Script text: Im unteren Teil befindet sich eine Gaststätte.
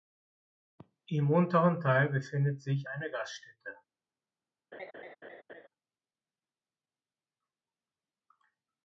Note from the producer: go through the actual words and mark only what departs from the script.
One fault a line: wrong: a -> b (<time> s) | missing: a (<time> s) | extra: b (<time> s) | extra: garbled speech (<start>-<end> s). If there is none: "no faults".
no faults